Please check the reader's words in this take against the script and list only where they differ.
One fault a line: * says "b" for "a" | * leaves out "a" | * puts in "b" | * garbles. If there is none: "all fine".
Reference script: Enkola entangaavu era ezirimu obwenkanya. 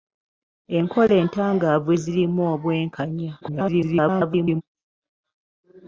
* leaves out "era"
* garbles